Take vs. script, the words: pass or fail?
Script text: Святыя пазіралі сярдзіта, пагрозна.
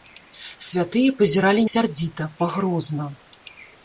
pass